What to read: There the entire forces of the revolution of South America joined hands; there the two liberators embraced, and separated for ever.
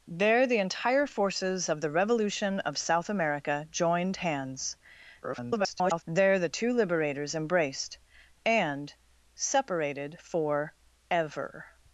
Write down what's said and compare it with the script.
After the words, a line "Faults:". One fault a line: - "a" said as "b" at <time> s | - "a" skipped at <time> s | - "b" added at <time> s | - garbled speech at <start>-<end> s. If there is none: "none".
There the entire forces of the revolution of South America joined hands; [garbled] there the two liberators embraced, and separated for ever.
Faults:
- garbled speech at 5.2-6.0 s